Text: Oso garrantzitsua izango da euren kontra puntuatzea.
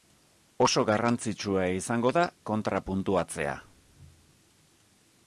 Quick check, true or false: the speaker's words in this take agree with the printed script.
false